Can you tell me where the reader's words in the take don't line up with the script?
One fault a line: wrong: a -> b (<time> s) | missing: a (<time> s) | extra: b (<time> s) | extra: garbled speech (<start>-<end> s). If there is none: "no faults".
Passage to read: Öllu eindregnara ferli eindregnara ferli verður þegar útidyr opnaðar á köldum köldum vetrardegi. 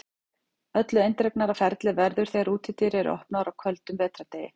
missing: eindregnara ferli (1.9 s)
extra: eru (3.0 s)
missing: köldum (4.0 s)